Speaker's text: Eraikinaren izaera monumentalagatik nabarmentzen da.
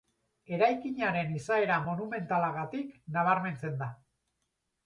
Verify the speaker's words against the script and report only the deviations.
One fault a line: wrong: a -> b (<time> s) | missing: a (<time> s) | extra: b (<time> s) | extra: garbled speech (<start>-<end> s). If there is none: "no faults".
no faults